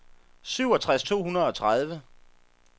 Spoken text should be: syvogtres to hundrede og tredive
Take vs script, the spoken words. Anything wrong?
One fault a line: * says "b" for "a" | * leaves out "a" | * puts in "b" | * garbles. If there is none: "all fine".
all fine